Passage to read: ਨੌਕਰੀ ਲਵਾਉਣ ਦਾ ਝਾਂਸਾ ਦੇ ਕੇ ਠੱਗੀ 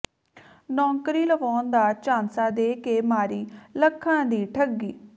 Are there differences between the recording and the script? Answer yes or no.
yes